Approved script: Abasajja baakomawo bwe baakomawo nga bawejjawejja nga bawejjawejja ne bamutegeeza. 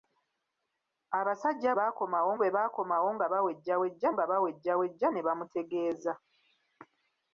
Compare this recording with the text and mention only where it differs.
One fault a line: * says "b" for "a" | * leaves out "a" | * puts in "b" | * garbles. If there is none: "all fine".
all fine